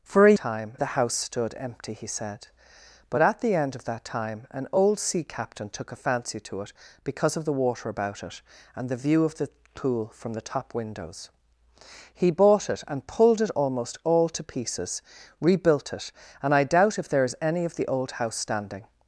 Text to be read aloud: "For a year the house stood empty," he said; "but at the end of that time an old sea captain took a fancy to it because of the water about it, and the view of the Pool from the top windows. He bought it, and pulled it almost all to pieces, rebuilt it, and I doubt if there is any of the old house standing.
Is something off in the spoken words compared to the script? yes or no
yes